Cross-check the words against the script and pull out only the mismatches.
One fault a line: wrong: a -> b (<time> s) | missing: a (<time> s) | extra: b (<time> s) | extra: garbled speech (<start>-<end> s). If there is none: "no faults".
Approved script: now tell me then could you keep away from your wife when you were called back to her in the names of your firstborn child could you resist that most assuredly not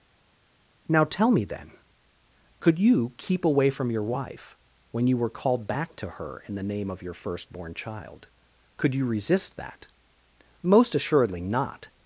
wrong: names -> name (6.6 s)